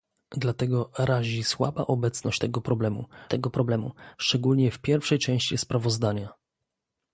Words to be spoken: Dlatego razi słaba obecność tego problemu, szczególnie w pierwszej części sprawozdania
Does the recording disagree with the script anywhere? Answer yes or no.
yes